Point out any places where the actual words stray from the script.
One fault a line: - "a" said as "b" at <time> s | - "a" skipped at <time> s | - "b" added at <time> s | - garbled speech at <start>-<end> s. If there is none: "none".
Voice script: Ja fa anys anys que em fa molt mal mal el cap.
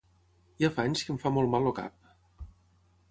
- "anys" skipped at 1.0 s
- "mal" skipped at 1.7 s